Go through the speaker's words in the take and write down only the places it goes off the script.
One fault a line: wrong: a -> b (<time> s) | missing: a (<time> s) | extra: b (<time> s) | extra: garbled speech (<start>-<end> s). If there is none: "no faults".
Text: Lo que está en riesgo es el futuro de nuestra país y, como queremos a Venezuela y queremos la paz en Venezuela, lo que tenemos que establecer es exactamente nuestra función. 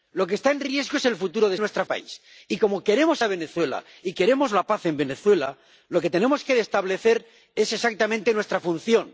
no faults